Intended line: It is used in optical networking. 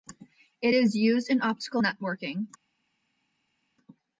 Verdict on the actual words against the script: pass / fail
pass